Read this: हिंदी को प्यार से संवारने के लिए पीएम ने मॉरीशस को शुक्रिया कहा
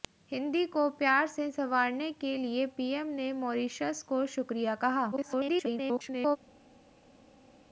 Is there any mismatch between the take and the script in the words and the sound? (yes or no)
yes